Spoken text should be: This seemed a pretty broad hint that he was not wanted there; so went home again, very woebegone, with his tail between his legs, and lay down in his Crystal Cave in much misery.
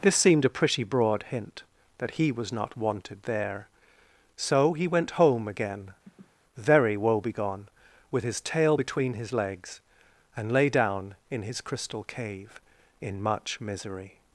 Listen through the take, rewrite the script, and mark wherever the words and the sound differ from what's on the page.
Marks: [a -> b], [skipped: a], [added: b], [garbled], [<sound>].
This seemed a pretty broad hint that he was not wanted there; so [added: he] went home again, [sniff] very woebegone, with his tail between his legs, and lay down in his Crystal Cave in much misery.